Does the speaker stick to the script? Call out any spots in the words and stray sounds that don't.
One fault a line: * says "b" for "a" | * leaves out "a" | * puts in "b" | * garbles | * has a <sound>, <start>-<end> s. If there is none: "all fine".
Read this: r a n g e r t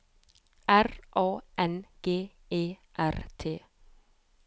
all fine